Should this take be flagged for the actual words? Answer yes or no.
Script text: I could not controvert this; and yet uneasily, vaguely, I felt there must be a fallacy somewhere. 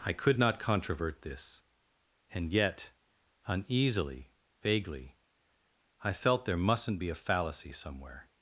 yes